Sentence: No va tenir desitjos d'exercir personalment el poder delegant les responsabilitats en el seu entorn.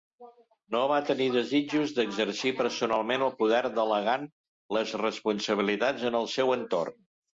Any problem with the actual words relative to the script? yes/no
no